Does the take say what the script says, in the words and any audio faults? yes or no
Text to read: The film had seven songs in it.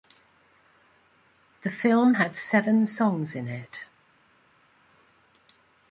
yes